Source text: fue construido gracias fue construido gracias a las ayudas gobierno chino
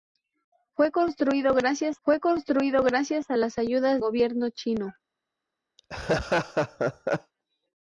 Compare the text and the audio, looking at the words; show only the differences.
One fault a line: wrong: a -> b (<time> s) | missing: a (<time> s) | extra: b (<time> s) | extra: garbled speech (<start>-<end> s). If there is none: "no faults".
no faults